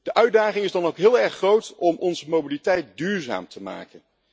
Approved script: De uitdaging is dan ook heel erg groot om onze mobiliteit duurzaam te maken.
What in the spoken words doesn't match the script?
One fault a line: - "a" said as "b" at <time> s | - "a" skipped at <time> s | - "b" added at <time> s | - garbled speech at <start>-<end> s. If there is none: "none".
none